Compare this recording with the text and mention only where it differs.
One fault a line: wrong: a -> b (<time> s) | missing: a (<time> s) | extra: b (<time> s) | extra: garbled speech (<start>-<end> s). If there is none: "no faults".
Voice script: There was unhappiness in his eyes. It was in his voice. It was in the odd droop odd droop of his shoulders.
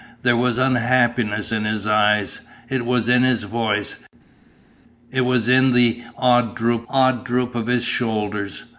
no faults